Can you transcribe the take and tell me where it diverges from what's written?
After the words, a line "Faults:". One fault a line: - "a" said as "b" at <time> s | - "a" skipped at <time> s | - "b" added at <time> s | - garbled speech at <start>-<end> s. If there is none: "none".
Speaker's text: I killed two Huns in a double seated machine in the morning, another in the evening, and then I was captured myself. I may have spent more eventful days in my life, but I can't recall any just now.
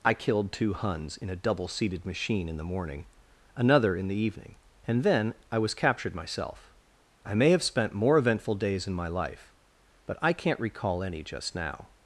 I killed two Huns in a double seated machine in the morning, another in the evening, and then I was captured myself. I may have spent more eventful days in my life, but I can't recall any just now.
Faults:
none